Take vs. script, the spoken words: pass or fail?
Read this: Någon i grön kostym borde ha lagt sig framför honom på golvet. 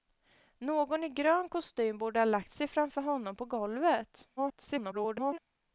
fail